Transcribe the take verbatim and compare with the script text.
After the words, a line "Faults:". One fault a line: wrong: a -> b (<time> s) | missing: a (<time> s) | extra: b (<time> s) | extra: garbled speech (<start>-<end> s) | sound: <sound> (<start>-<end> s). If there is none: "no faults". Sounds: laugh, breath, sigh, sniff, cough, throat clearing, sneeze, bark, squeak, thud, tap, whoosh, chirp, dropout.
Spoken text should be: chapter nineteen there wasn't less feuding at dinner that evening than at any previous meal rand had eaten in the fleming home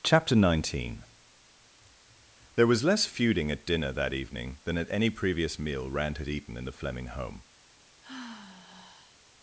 chapter nineteen there was less feuding at dinner that evening than at any previous meal rand had eaten in the fleming home
Faults:
wrong: wasn't -> was (2.6 s)
sound: sigh (8.0-9.2 s)